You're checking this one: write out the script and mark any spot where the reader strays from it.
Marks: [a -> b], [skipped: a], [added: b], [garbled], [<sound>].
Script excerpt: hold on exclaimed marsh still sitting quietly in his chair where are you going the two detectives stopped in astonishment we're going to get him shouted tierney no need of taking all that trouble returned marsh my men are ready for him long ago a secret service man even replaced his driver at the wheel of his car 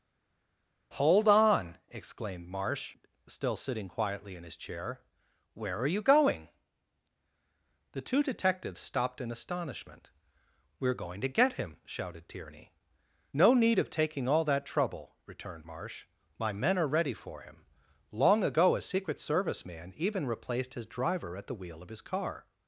hold on exclaimed marsh still sitting quietly in his chair where are you going the two detectives stopped in astonishment we're going to get him shouted tierney no need of taking all that trouble returned marsh my men are ready for him long ago a secret service man even replaced his driver at the wheel of his car